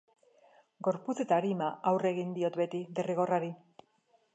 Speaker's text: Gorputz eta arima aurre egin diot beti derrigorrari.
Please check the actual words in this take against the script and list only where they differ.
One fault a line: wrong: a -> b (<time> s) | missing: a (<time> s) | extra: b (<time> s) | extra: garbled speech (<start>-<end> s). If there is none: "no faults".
no faults